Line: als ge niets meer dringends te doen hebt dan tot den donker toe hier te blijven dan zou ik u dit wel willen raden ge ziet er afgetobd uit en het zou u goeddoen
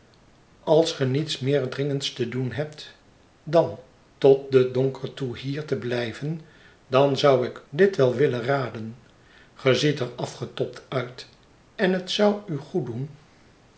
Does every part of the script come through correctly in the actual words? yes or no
no